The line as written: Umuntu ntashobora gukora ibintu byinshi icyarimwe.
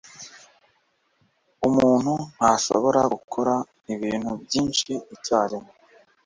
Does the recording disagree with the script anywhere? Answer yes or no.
no